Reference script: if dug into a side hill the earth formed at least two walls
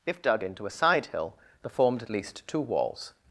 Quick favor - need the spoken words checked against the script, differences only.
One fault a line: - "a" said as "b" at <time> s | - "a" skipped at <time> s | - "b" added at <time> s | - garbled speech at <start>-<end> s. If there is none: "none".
- "earth" skipped at 1.7 s